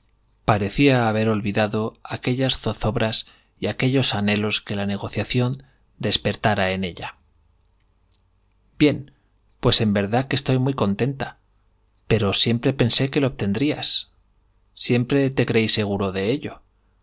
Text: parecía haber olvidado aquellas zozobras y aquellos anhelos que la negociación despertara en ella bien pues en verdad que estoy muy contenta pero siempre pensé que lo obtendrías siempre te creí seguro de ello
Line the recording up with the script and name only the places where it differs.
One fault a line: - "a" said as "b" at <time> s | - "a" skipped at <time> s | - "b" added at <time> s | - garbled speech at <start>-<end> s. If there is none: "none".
none